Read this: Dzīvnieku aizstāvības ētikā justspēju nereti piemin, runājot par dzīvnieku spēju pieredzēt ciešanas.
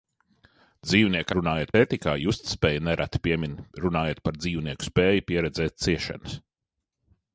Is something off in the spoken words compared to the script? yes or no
yes